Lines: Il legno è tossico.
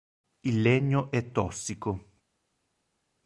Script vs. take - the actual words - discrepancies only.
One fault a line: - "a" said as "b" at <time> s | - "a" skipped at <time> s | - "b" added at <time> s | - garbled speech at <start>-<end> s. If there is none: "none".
none